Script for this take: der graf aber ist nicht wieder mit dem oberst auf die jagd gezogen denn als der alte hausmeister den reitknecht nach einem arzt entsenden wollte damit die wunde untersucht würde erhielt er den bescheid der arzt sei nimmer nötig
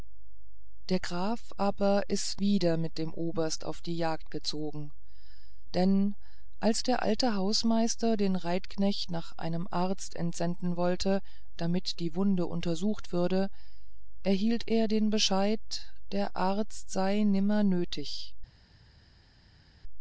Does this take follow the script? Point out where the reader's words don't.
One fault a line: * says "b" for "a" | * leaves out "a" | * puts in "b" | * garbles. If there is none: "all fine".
* leaves out "nicht"